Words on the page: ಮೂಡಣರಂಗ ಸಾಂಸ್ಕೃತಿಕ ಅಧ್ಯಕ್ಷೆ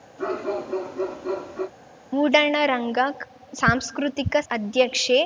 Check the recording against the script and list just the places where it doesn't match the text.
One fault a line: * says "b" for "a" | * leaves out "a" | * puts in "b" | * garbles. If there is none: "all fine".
all fine